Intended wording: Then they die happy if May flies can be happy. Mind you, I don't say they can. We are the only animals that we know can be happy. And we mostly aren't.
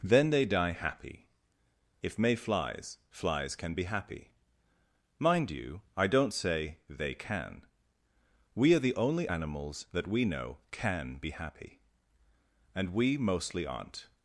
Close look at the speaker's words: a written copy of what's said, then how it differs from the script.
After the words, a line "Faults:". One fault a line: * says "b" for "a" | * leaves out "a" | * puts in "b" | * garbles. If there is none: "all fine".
Then they die happy if May flies flies can be happy. Mind you, I don't say they can. We are the only animals that we know can be happy. And we mostly aren't.
Faults:
* puts in "flies"